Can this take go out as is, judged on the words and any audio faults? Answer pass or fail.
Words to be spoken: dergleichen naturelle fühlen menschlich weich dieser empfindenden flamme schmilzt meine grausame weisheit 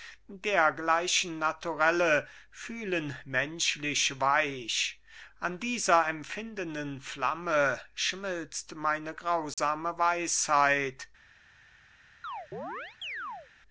fail